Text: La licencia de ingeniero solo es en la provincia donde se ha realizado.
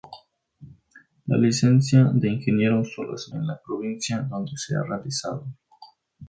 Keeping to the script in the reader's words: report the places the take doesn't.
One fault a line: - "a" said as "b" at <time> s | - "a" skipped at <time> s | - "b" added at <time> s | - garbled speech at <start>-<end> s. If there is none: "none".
none